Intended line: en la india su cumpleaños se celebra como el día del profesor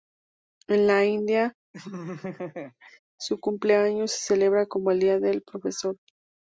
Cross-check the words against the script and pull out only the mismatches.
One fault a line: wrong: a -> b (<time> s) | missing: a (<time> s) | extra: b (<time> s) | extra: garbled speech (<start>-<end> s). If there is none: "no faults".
no faults